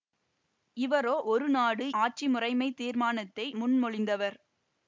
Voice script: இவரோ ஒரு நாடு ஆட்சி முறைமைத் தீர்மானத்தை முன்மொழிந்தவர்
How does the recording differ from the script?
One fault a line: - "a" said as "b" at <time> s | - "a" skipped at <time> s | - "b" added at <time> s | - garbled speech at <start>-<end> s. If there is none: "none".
none